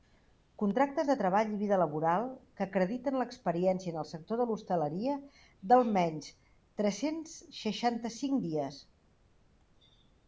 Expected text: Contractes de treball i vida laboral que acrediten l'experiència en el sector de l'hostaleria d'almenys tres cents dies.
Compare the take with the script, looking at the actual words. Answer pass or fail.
fail